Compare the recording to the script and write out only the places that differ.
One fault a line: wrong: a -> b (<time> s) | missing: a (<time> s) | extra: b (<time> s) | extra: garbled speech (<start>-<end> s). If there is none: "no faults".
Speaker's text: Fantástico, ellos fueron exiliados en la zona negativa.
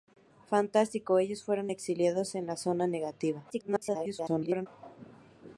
extra: garbled speech (3.5-4.7 s)